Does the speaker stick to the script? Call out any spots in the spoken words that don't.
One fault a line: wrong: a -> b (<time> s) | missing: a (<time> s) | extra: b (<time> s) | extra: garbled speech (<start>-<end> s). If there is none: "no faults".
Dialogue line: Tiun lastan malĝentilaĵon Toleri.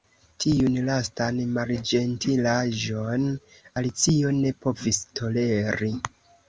extra: Alicio ne povis (3.8 s)